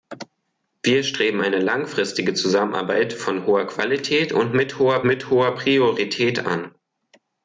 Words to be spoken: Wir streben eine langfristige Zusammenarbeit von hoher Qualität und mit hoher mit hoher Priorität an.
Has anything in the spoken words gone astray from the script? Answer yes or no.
no